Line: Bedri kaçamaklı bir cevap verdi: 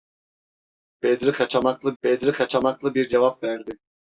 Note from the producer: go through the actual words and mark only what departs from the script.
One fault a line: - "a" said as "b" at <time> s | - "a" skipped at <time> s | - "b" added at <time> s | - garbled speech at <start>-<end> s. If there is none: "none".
- "bedri kaçamaklı" added at 2.0 s